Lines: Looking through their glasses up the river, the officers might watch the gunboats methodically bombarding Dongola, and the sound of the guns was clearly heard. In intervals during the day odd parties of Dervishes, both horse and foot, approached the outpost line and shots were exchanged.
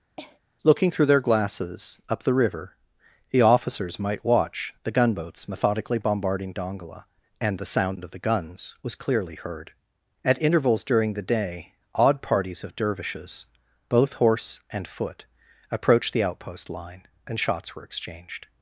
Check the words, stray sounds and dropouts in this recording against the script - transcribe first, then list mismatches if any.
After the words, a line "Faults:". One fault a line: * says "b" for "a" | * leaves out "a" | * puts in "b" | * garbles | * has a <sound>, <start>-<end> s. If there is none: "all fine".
Looking through their glasses up the river, the officers might watch the gunboats methodically bombarding Dongola, and the sound of the guns was clearly heard. At intervals during the day odd parties of Dervishes, both horse and foot, approached the outpost line and shots were exchanged.
Faults:
* has a cough, 0.2-0.4 s
* says "At" for "In"